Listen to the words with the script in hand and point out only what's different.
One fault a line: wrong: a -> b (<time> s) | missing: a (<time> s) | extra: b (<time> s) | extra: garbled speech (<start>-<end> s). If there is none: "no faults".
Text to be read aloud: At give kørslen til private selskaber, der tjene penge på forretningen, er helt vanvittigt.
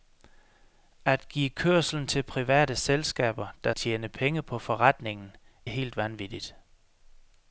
no faults